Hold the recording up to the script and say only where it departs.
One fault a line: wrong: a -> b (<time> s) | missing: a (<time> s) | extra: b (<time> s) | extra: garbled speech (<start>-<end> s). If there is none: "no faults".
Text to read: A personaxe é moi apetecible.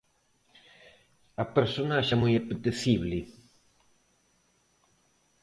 no faults